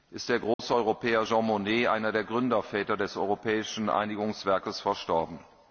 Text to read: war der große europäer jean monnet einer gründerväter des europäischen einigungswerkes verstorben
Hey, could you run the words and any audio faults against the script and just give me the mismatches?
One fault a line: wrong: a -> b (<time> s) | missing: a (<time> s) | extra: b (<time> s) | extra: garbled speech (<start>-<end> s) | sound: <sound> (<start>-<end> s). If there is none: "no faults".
wrong: war -> ist (0.1 s)
sound: dropout (0.5-0.6 s)
extra: der (2.1 s)